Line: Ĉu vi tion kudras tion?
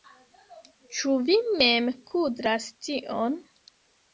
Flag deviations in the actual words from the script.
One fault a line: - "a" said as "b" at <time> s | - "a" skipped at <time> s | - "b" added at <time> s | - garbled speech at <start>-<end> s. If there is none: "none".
- "tion" said as "mem" at 1.6 s